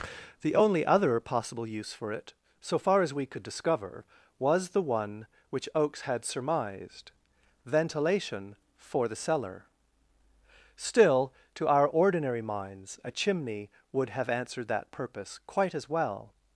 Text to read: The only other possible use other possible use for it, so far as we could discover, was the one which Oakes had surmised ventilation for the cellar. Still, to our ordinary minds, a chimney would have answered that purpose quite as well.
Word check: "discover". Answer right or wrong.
right